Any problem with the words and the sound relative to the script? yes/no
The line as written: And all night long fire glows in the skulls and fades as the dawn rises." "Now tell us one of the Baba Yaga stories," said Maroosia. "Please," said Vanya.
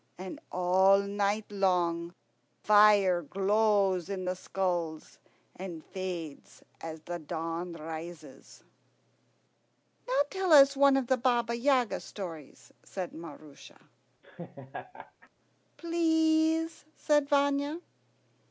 yes